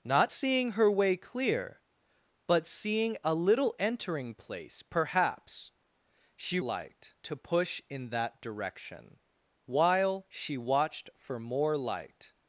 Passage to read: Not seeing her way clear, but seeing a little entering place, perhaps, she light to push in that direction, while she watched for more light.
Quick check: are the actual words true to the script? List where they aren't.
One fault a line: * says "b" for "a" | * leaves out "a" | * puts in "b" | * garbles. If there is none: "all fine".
all fine